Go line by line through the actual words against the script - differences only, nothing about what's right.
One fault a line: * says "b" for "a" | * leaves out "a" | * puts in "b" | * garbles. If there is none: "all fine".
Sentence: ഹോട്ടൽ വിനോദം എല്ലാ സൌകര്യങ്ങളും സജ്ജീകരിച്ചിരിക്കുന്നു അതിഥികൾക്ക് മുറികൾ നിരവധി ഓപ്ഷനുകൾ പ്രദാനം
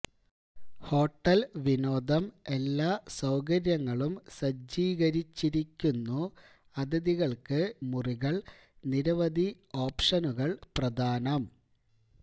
all fine